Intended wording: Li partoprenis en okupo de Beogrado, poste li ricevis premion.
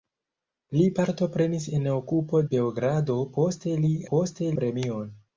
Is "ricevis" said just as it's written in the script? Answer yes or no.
no